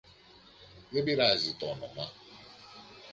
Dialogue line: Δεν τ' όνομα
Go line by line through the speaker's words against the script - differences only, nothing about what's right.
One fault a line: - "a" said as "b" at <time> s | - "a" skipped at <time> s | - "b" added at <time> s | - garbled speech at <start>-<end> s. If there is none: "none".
- "πειράζει" added at 1.0 s